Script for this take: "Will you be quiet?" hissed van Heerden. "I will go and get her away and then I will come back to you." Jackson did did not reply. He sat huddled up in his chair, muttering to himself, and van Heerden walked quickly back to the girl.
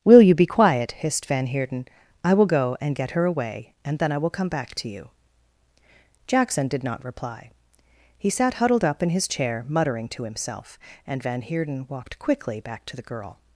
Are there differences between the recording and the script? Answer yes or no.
yes